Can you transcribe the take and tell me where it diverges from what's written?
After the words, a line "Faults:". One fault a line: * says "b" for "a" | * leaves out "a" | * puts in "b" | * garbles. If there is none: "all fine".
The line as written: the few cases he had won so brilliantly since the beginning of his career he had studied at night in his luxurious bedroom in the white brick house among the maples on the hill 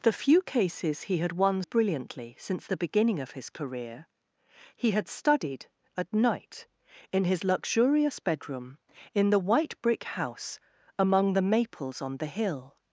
the few cases he had won brilliantly since the beginning of his career he had studied at night in his luxurious bedroom in the white brick house among the maples on the hill
Faults:
* leaves out "so"